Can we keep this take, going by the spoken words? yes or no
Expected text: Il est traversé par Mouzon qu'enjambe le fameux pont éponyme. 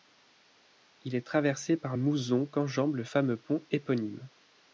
yes